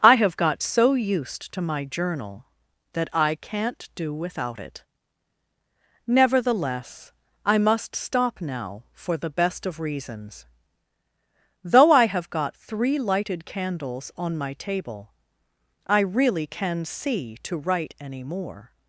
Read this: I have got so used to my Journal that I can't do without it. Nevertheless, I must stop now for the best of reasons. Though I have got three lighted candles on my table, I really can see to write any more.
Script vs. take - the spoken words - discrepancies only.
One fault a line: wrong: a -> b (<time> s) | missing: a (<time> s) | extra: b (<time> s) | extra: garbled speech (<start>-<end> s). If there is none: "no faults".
no faults